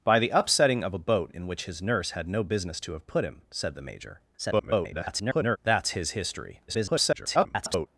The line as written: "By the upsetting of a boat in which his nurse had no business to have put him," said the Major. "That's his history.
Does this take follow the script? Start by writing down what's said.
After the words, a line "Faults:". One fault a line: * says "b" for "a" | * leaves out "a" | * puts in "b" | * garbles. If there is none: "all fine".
"By the upsetting of a boat in which his nurse had no business to have put him," said the Major. [garbled] "That's his history. [garbled]
Faults:
* garbles
* garbles